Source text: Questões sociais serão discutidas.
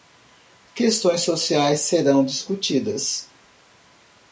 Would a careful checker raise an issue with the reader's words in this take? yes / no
no